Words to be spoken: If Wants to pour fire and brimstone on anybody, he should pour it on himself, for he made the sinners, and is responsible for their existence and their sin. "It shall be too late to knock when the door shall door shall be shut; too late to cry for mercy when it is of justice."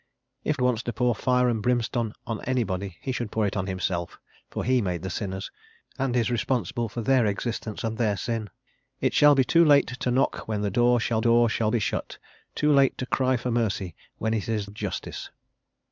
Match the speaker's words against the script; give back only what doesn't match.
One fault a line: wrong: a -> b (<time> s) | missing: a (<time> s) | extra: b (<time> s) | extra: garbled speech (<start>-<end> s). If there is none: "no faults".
no faults